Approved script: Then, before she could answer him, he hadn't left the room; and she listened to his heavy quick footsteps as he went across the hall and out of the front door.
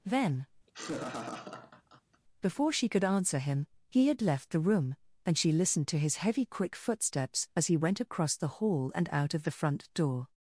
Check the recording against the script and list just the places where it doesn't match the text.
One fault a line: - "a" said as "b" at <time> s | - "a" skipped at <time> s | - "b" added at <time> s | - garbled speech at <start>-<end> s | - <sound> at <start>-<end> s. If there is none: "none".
- laugh at 0.7-2.2 s
- "hadn't" said as "had" at 4.1 s